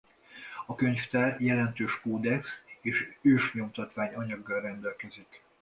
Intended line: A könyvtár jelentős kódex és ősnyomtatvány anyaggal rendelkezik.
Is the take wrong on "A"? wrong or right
right